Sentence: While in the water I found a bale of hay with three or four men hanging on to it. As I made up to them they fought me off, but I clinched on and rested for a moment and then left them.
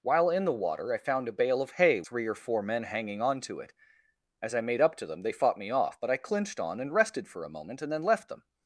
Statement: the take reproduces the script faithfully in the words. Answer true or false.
false